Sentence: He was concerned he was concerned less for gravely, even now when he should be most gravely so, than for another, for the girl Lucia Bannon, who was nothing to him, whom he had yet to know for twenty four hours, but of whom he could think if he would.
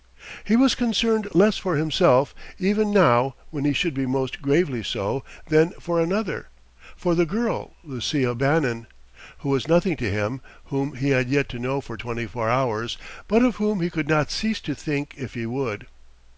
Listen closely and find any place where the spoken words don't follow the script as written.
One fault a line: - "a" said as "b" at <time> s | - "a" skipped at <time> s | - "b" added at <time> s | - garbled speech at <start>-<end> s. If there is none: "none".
- "he was concerned" skipped at 1.3 s
- "gravely" said as "himself" at 1.8 s
- "not cease to" added at 14.1 s